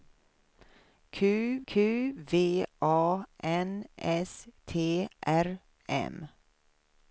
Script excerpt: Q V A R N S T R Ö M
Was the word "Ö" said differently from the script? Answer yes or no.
yes